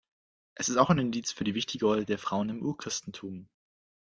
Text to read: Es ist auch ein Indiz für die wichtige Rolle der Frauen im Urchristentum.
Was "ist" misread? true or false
false